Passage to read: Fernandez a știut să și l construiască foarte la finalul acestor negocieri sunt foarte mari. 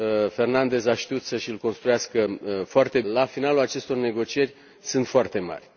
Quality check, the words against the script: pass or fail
pass